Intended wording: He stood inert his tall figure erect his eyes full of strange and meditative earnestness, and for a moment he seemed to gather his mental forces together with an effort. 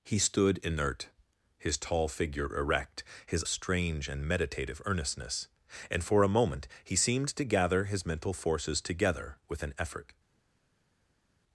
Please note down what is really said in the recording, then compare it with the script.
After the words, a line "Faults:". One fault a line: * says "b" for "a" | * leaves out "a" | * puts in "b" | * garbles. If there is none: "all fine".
He stood inert his tall figure erect his strange and meditative earnestness, and for a moment he seemed to gather his mental forces together with an effort.
Faults:
* leaves out "eyes full of"